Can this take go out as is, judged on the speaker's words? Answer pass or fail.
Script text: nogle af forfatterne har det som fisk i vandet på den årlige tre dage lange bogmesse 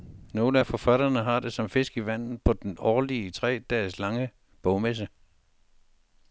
pass